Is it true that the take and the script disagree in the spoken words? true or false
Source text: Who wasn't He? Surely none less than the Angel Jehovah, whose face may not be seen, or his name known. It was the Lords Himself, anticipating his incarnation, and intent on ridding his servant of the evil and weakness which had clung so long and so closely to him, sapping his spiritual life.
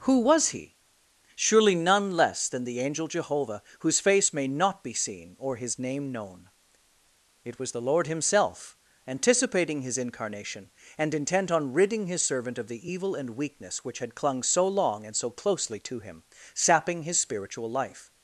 true